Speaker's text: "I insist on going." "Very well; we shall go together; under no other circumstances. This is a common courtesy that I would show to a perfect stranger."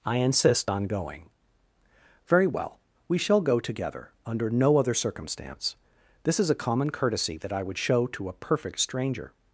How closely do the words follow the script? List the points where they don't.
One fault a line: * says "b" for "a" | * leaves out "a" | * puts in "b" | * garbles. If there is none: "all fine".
* says "circumstance" for "circumstances"